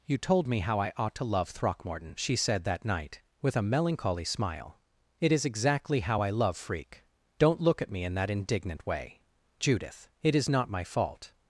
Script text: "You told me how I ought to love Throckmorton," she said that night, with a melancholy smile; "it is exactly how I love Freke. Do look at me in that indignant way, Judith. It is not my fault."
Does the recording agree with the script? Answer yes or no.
no